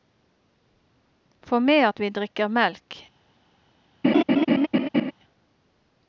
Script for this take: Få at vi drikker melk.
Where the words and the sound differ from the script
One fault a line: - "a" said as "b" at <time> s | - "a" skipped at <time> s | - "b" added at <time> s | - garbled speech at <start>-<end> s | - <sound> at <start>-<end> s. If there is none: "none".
- "med" added at 1.6 s
- laugh at 4.0-5.1 s